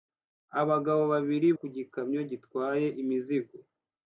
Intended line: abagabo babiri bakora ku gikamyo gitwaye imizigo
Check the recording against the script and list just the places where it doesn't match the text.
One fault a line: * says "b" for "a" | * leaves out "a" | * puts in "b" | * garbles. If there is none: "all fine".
* leaves out "bakora"